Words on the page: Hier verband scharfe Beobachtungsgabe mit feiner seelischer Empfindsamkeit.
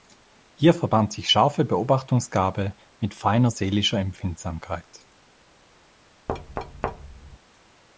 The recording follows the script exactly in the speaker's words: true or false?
false